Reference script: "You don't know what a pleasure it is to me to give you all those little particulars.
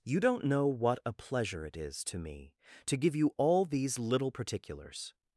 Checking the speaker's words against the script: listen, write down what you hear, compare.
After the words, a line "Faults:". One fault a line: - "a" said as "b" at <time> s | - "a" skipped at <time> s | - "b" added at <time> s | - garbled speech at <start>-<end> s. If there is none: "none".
"You don't know what a pleasure it is to me to give you all these little particulars.
Faults:
- "those" said as "these" at 3.7 s